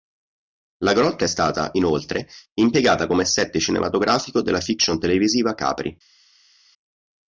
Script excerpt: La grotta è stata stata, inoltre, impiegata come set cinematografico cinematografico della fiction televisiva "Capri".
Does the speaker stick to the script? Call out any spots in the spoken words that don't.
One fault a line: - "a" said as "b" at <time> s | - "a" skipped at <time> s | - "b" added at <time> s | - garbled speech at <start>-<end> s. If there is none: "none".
- "stata" skipped at 1.7 s
- "cinematografico" skipped at 4.4 s